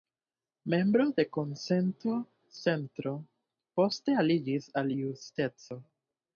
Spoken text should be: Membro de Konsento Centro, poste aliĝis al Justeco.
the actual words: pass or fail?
pass